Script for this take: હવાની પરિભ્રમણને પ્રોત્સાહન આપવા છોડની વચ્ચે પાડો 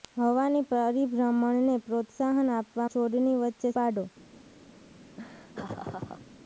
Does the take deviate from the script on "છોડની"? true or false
false